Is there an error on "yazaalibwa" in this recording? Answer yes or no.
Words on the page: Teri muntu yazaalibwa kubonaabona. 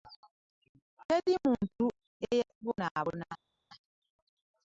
yes